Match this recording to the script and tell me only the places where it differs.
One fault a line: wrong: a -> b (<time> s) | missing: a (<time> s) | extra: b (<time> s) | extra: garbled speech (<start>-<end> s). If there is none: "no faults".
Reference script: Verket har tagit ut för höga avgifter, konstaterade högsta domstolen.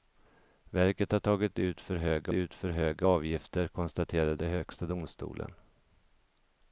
extra: ut för höga (2.3 s)